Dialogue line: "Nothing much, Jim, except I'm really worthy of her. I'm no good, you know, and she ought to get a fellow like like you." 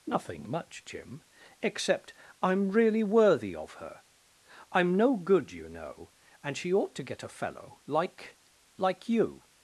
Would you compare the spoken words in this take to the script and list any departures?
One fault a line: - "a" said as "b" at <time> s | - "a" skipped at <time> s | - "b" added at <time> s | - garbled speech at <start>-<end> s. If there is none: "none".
none